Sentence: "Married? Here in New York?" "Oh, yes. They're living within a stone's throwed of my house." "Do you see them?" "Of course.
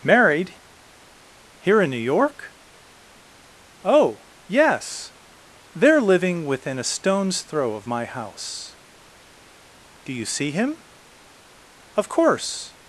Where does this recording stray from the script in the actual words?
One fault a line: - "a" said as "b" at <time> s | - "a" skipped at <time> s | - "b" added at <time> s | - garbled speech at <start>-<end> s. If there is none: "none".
- "throwed" said as "throw" at 7.4 s
- "them" said as "him" at 10.5 s